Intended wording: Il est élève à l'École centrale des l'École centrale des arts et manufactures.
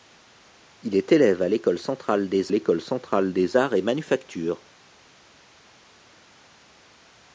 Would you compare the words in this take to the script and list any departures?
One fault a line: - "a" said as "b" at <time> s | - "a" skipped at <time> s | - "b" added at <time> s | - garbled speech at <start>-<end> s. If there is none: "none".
none